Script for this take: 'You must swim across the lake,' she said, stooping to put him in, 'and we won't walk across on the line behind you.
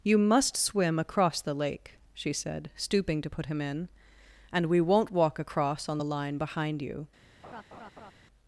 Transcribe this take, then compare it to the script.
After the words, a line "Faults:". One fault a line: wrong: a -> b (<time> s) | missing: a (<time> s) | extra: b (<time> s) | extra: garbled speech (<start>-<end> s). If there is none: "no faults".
'You must swim across the lake,' she said, stooping to put him in, 'and we won't walk across on the line behind you.
Faults:
no faults